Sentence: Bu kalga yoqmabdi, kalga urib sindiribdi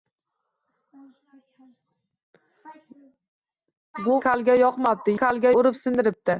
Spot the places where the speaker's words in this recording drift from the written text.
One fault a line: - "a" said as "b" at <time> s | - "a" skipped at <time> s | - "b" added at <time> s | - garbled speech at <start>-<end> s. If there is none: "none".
none